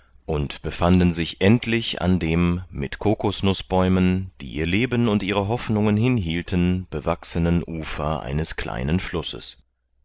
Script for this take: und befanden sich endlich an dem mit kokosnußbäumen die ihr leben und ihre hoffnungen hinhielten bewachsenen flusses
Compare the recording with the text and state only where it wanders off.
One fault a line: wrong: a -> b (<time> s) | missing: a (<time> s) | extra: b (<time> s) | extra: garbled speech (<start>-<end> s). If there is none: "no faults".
extra: ufer eines kleinen (7.7 s)